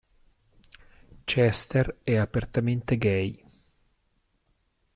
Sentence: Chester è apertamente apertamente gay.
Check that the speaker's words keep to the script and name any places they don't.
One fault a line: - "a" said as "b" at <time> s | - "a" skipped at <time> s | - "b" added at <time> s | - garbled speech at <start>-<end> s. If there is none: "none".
- "apertamente" skipped at 3.0 s